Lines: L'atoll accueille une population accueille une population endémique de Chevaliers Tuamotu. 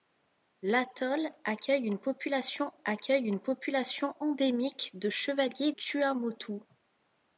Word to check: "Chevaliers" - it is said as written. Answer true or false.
true